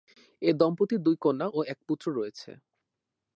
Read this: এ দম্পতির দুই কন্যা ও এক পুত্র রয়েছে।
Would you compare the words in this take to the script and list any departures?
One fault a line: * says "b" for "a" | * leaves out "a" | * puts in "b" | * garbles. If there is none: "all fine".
all fine